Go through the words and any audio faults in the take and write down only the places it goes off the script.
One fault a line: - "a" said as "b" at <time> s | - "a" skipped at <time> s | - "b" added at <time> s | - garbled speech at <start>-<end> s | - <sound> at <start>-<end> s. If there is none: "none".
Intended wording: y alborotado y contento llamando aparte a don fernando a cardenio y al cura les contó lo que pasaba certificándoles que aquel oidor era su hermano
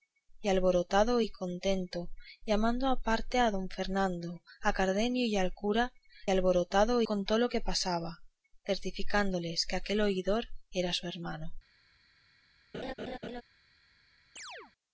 - "les" said as "alborotado" at 6.3 s
- laugh at 12.7-13.4 s
- chirp at 14.4-14.7 s